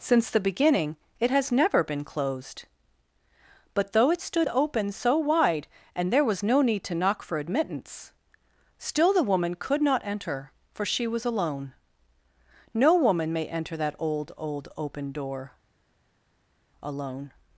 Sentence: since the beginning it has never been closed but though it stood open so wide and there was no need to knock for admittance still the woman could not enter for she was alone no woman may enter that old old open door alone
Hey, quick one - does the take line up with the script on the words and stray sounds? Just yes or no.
yes